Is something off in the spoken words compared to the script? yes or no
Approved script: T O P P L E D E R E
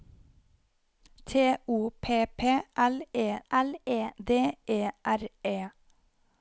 yes